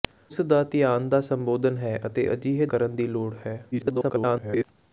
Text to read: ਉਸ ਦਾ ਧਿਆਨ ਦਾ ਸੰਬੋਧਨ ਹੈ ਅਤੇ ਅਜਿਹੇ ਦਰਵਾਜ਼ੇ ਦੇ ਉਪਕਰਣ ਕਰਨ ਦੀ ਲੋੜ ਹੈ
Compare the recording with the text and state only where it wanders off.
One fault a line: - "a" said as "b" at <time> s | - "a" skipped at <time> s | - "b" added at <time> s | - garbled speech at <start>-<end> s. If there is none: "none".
- "ਦਰਵਾਜ਼ੇ ਦੇ ਉਪਕਰਣ" skipped at 2.6 s
- garbled speech at 3.7-4.6 s